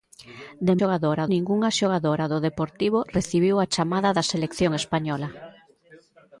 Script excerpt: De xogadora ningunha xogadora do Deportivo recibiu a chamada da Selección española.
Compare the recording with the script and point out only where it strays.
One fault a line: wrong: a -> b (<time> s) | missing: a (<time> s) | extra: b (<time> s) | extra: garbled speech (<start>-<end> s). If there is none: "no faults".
no faults